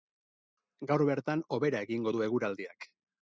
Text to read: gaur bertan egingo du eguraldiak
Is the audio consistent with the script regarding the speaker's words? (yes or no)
no